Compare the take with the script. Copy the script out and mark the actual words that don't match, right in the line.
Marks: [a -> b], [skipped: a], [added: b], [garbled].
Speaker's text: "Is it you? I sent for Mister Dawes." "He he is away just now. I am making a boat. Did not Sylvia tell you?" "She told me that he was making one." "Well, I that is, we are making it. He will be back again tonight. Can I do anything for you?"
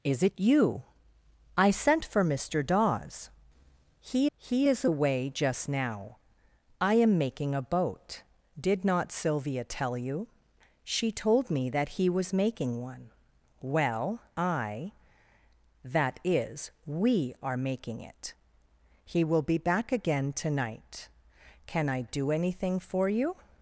"Is it you? I sent for Mister Dawes." "He he is away just now. I am making a boat. Did not Sylvia tell you?" "She told me that he was making one." "Well, I that is, we are making it. He will be back again tonight. Can I do anything for you?"